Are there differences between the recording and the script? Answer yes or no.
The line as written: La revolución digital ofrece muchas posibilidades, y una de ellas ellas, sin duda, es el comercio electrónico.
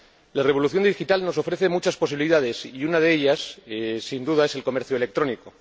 yes